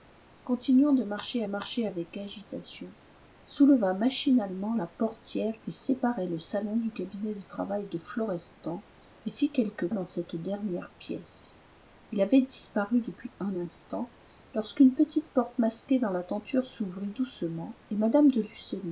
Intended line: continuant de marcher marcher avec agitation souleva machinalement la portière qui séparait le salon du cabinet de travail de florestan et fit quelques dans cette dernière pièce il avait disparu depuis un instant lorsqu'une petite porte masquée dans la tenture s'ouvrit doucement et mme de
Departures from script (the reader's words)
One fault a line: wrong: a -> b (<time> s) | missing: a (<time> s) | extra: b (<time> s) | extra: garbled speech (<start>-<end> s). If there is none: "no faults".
no faults